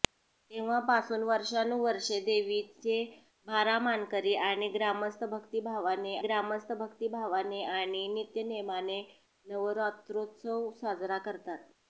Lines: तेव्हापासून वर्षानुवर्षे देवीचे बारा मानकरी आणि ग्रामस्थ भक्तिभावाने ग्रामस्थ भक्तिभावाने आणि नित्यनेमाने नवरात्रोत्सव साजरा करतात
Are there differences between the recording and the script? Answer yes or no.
no